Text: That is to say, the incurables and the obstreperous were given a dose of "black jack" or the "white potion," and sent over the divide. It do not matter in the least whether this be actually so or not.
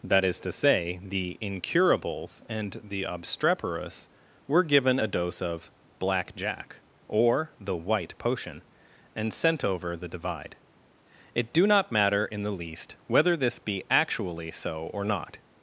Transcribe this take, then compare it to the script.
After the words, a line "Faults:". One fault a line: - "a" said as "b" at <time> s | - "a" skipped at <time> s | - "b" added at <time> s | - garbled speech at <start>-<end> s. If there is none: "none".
That is to say, the incurables and the obstreperous were given a dose of "black jack" or the "white potion," and sent over the divide. It do not matter in the least whether this be actually so or not.
Faults:
none